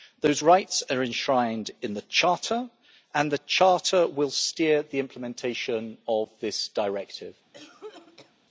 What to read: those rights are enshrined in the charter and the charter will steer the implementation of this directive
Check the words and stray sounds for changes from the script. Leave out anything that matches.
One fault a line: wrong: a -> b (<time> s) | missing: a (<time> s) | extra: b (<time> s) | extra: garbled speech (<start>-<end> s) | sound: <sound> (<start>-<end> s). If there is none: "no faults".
sound: cough (7.5-8.3 s)